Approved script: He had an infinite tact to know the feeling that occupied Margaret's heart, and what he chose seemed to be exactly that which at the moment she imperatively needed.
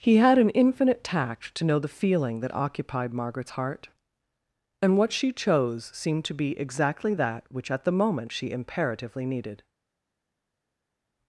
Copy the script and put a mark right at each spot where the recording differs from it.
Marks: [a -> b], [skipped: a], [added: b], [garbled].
He had an infinite tact to know the feeling that occupied Margaret's heart, and what [he -> she] chose seemed to be exactly that which at the moment she imperatively needed.